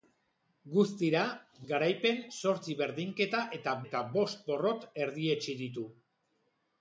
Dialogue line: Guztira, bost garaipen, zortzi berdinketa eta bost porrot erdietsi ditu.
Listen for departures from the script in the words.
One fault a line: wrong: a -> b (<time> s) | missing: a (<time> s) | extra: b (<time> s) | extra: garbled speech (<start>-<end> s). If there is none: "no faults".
missing: bost (1.2 s)
extra: eta (3.9 s)